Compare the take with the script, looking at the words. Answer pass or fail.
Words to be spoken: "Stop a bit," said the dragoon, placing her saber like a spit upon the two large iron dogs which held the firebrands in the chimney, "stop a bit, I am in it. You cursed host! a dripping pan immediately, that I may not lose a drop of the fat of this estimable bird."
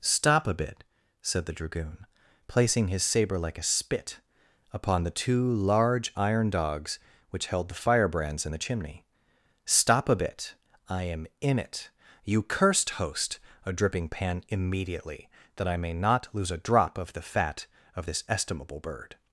fail